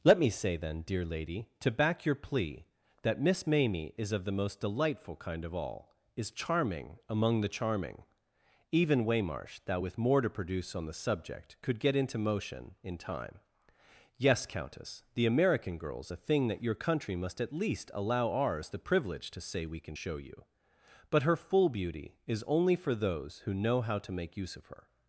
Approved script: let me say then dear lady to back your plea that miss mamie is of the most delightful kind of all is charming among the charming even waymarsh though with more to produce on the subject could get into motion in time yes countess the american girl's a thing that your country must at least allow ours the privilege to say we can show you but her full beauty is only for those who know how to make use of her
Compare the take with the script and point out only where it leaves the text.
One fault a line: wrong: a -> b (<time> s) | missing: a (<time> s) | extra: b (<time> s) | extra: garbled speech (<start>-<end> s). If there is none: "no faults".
wrong: though -> thou (9.7 s)